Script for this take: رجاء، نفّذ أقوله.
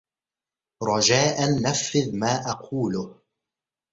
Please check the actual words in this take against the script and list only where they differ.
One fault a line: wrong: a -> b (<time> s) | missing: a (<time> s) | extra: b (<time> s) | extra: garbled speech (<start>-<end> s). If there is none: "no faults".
extra: ما (2.1 s)